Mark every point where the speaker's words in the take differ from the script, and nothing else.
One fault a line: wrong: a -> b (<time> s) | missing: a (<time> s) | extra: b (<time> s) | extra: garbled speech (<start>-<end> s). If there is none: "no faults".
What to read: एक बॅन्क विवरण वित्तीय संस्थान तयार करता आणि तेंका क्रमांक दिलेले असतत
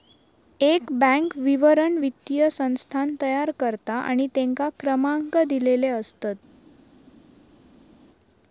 no faults